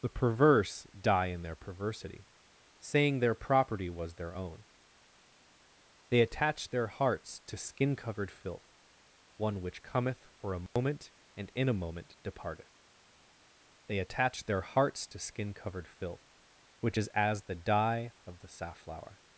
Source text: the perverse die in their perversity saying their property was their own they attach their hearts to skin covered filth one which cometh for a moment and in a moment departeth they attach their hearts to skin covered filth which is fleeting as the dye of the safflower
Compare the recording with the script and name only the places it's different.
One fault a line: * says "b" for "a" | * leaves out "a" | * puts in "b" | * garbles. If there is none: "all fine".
* leaves out "fleeting"